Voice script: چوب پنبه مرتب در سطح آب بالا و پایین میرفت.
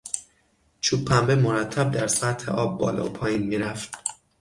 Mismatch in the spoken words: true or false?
false